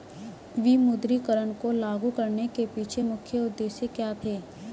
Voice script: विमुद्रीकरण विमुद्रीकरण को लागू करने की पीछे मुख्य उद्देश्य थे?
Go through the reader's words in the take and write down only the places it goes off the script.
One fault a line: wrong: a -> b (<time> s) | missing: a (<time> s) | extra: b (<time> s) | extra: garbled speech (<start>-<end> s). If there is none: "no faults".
missing: विमुद्रीकरण (1.5 s)
wrong: की -> के (2.5 s)
extra: क्या (3.9 s)